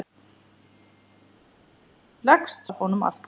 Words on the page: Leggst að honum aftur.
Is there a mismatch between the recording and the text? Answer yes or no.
no